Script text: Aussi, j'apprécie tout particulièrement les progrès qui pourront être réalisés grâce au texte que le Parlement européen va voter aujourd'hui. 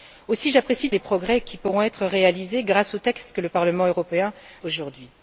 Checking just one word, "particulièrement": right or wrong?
wrong